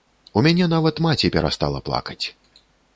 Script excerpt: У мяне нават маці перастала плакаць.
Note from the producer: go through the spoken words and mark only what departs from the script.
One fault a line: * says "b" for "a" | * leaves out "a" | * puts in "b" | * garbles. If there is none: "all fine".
all fine